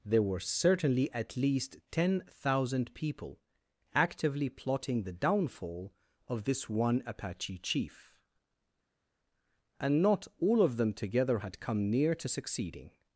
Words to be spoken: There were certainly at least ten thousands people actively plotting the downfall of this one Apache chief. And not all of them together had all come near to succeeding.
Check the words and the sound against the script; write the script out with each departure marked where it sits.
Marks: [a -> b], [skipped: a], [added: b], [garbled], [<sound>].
There were certainly at least ten [thousands -> thousand] people actively plotting the downfall of this one Apache chief. And not all of them together had [skipped: all] come near to succeeding.